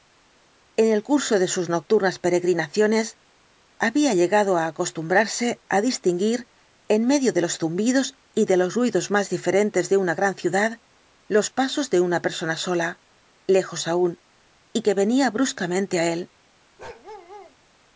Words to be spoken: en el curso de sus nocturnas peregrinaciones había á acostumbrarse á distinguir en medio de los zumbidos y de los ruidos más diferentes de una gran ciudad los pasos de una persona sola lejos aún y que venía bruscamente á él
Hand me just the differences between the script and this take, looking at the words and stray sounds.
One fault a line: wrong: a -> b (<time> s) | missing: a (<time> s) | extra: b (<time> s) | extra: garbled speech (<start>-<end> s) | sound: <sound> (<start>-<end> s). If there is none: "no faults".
extra: llegado (4.2 s)
sound: bark (16.8-17.6 s)